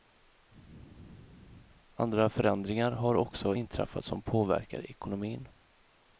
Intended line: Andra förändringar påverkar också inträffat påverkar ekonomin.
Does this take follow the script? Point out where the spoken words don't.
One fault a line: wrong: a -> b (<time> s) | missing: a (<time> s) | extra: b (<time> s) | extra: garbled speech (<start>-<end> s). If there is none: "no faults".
wrong: påverkar -> har (2.9 s)
extra: som (4.0 s)